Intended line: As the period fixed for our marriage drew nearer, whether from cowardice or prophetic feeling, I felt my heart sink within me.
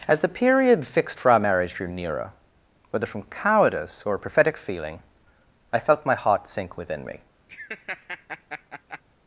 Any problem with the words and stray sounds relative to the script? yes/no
yes